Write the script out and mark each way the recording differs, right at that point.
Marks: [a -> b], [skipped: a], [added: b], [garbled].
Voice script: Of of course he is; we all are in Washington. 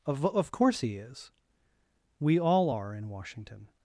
Of of course he is; we all are in Washington.